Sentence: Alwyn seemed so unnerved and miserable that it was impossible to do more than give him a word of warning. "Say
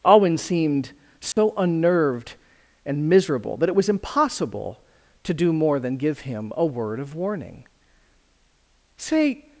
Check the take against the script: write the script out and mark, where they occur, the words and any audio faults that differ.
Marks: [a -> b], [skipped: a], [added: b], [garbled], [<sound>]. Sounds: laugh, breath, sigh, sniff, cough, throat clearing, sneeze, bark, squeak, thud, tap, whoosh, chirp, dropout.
Alwyn seemed so [dropout] unnerved and miserable that it was impossible to do more than give him a word of warning. "Say